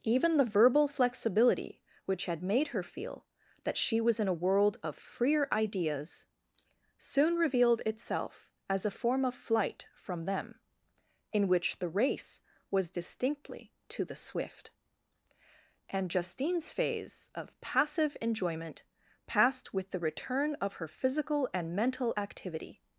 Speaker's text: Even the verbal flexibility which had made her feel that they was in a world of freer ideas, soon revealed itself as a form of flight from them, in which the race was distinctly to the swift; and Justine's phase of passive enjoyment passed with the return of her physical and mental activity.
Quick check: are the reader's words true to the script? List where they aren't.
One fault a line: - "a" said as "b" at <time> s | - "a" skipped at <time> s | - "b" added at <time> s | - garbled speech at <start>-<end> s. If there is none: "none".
- "they" said as "she" at 3.8 s